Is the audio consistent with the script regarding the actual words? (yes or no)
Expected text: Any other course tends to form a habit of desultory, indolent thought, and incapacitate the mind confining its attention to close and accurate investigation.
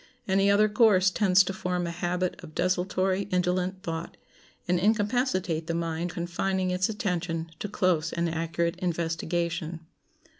yes